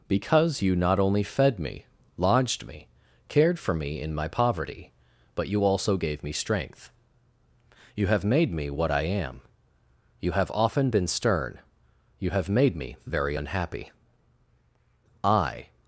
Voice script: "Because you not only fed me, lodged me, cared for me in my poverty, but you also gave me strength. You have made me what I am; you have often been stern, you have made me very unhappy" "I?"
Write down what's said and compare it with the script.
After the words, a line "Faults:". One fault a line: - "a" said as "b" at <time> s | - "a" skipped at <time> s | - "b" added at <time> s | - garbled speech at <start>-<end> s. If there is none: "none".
"Because you not only fed me, lodged me, cared for me in my poverty, but you also gave me strength. You have made me what I am; you have often been stern, you have made me very unhappy" "I?"
Faults:
none